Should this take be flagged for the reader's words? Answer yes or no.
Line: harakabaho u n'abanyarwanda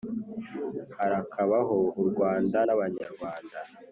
yes